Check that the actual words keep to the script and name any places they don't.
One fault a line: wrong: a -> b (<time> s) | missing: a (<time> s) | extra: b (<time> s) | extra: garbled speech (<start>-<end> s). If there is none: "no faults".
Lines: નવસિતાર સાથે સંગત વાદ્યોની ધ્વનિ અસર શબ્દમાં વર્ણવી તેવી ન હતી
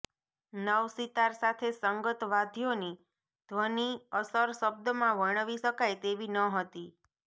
extra: શકાય (5.6 s)